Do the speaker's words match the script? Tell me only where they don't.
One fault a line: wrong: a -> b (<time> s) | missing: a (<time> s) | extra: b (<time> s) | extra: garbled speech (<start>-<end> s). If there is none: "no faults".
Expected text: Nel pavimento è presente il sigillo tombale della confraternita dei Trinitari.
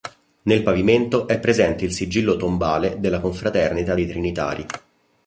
no faults